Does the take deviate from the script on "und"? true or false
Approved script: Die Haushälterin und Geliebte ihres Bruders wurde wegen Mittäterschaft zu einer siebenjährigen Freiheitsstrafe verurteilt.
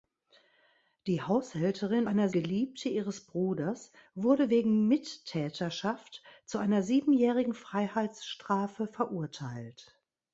true